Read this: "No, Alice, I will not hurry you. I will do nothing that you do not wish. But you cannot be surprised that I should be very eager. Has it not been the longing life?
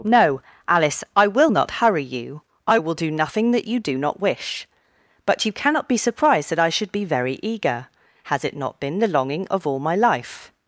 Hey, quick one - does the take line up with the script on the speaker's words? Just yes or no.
no